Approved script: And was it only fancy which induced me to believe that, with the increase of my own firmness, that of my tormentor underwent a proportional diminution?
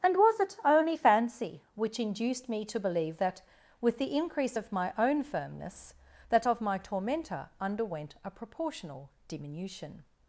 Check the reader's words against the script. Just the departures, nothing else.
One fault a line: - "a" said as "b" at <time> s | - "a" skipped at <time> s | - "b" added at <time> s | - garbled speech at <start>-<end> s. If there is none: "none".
none